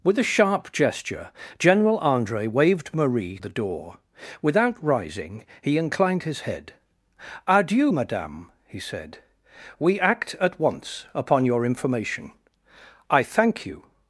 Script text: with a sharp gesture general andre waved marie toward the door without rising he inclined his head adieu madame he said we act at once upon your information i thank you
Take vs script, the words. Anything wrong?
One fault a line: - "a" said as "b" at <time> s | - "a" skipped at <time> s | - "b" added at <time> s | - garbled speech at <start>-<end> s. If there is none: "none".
- "toward" skipped at 3.4 s